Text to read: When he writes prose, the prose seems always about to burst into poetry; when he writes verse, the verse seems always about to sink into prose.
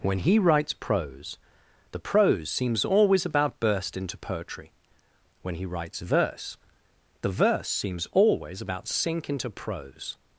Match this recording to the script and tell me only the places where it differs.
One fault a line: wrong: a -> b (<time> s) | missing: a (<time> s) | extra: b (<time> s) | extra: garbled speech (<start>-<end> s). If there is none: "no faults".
missing: to (3.6 s)
missing: to (8.9 s)